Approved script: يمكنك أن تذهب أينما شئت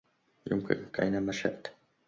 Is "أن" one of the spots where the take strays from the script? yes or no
yes